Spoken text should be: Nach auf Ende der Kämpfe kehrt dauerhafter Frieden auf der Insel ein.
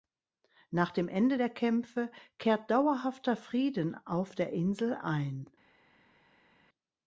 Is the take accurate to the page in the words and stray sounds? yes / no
no